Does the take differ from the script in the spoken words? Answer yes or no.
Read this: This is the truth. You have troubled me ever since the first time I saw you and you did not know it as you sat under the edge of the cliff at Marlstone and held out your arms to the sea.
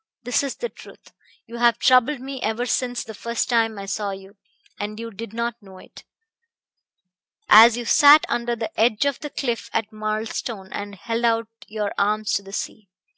no